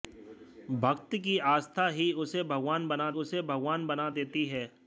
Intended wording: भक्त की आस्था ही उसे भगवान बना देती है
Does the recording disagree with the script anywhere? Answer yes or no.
yes